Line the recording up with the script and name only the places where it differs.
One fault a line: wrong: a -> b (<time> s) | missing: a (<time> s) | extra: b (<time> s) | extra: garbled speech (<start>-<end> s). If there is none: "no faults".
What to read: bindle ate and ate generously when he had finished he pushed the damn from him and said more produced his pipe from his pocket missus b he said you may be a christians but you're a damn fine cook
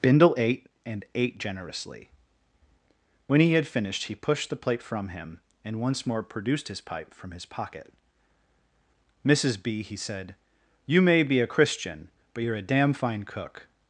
wrong: damn -> plate (4.5 s)
wrong: said -> once (5.8 s)
wrong: christians -> christian (11.5 s)